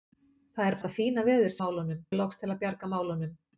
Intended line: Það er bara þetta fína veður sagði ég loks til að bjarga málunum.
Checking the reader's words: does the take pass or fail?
fail